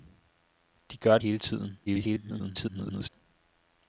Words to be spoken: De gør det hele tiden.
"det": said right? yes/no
no